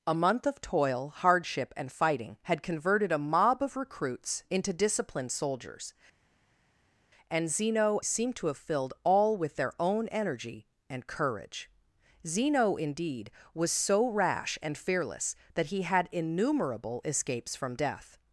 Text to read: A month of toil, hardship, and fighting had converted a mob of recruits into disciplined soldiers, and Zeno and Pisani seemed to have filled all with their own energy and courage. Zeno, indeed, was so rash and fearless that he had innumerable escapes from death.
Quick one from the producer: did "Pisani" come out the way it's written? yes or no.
no